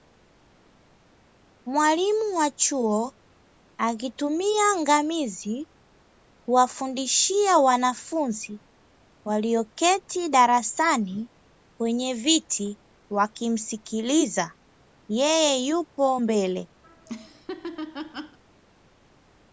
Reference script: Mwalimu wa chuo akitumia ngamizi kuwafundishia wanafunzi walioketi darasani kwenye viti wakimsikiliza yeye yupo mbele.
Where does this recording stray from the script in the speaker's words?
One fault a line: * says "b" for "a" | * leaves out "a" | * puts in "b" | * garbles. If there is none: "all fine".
all fine